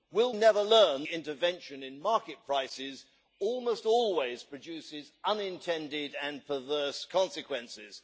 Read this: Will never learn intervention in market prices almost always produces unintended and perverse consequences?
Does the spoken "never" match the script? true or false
true